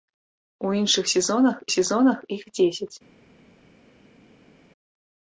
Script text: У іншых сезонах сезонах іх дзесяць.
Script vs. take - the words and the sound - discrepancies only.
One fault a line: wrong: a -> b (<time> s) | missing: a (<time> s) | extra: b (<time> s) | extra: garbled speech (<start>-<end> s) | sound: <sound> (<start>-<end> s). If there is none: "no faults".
no faults